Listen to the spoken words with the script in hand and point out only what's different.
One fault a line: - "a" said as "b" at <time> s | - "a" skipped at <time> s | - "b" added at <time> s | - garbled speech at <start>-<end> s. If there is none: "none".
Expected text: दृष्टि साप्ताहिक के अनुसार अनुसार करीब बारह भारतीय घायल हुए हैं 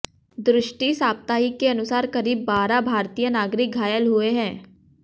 - "अनुसार" skipped at 2.1 s
- "नागरिक" added at 3.3 s